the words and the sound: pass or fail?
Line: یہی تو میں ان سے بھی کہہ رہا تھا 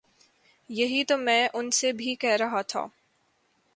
pass